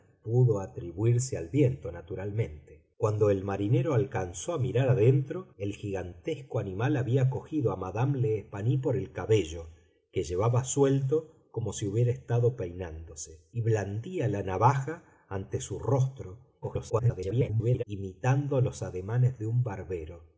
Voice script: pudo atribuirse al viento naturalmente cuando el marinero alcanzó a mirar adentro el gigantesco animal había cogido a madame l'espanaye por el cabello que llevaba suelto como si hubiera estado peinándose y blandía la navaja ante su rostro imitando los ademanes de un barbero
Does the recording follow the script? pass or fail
fail